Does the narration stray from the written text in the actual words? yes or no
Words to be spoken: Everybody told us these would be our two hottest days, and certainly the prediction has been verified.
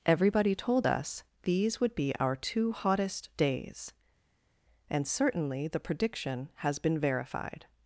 no